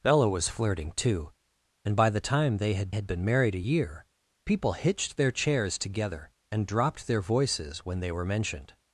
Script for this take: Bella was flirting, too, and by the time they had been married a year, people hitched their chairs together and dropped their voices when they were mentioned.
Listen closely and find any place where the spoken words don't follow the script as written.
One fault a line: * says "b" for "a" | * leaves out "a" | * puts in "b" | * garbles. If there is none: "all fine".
* puts in "had"